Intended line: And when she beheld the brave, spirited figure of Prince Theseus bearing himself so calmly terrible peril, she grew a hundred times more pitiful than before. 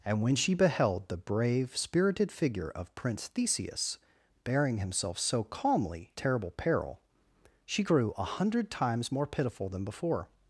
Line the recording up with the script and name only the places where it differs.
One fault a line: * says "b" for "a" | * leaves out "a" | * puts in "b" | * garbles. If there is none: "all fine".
all fine